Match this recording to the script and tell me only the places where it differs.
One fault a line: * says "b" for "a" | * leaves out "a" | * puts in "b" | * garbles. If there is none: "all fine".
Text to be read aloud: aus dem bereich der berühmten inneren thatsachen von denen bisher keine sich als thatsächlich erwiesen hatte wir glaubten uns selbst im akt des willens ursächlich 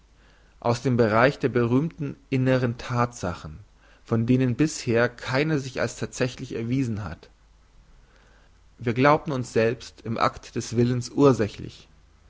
* says "hat" for "hatte"